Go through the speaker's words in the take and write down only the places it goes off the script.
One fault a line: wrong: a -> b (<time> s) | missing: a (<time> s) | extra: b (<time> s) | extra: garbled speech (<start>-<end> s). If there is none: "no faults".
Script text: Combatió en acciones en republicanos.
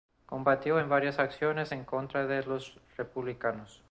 extra: varias (0.9 s)
extra: contra de los (1.9 s)